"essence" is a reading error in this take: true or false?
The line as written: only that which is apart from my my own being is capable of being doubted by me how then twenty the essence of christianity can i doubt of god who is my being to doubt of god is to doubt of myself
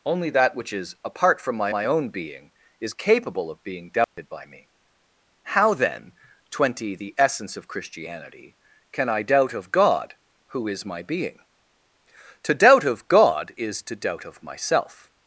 false